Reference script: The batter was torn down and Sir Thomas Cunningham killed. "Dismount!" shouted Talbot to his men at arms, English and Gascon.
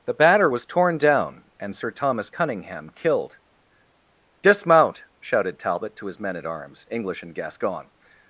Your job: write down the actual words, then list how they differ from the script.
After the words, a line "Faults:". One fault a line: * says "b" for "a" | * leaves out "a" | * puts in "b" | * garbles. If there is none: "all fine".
The batter was torn down and Sir Thomas Cunningham killed. "Dismount!" shouted Talbot to his men at arms, English and Gascon.
Faults:
all fine